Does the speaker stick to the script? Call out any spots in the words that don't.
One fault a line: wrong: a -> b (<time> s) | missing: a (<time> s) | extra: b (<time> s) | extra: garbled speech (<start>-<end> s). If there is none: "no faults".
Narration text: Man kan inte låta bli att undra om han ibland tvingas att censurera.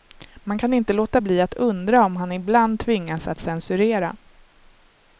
no faults